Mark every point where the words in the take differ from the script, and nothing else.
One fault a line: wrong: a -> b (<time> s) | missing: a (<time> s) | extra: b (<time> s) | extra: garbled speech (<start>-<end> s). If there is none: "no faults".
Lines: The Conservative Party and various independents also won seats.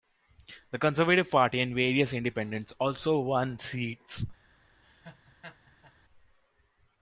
no faults